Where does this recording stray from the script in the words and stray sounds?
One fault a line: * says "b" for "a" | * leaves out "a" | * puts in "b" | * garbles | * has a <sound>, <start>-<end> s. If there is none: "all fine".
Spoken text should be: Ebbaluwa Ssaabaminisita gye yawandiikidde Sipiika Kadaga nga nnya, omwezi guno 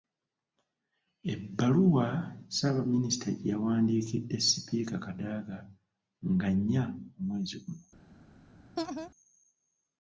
* has a laugh, 8.8-9.1 s